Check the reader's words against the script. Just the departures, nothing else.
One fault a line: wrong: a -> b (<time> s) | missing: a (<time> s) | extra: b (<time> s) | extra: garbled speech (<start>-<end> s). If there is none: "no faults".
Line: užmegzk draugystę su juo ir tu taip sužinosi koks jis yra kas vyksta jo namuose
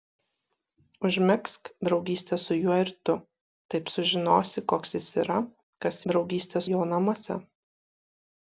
wrong: vyksta -> draugystę (6.1 s)